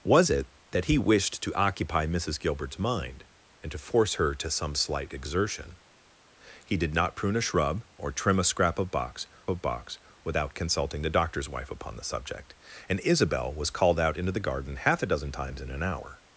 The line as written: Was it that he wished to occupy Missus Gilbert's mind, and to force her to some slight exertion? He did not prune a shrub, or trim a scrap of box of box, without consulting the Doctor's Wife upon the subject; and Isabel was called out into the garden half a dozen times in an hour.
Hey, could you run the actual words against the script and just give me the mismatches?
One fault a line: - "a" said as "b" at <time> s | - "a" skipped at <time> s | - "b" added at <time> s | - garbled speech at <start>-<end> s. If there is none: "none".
none